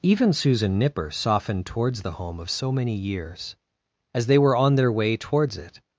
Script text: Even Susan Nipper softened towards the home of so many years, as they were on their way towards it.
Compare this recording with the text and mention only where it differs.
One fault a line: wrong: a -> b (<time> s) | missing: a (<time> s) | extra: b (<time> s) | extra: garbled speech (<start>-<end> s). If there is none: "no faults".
no faults